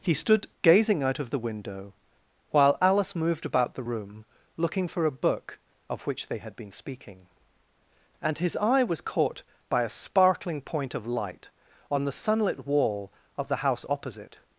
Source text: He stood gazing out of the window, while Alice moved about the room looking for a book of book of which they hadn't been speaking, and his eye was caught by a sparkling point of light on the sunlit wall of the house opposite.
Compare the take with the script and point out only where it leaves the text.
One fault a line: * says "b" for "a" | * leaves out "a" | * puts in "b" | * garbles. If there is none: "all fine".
* leaves out "book of"
* says "had" for "hadn't"